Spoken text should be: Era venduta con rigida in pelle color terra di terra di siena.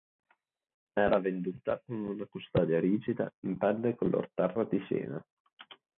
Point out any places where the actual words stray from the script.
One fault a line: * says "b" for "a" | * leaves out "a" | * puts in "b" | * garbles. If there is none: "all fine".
* puts in "una custodia"
* leaves out "terra di"